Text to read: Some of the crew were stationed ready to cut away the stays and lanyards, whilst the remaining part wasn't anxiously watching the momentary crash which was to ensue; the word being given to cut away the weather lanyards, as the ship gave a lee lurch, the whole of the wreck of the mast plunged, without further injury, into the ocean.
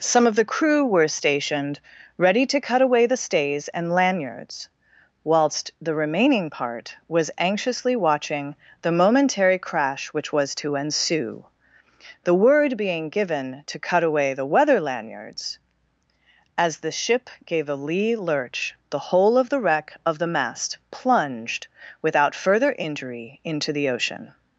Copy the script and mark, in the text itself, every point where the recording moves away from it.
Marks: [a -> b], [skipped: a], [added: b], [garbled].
Some of the crew were stationed ready to cut away the stays and lanyards, whilst the remaining part [wasn't -> was] anxiously watching the momentary crash which was to ensue; the word being given to cut away the weather lanyards, as the ship gave a lee lurch, the whole of the wreck of the mast plunged, without further injury, into the ocean.